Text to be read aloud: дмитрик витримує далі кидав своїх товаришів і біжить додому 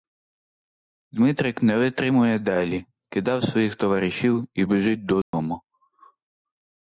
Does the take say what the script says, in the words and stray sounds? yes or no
no